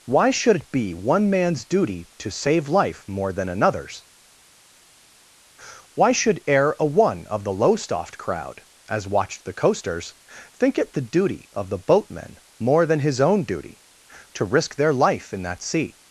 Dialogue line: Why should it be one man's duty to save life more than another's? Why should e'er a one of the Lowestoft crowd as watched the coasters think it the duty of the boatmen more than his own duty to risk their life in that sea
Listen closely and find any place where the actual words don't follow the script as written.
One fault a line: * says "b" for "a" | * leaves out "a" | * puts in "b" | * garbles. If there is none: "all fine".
all fine